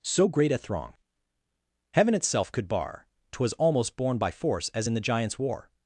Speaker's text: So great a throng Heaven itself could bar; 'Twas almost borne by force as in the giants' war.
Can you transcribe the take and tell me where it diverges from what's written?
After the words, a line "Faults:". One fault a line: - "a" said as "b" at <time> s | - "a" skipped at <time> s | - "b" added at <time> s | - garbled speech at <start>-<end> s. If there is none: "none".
So great a throng Heaven itself could bar; 'Twas almost borne by force as in the giants' war.
Faults:
none